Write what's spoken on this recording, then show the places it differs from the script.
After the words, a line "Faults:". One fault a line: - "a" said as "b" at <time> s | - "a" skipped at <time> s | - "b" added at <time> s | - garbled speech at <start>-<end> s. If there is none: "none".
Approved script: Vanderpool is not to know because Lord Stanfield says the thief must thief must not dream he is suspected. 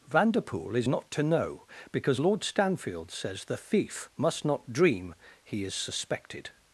Vanderpool is not to know because Lord Stanfield says the thief must not dream he is suspected.
Faults:
- "thief must" skipped at 4.4 s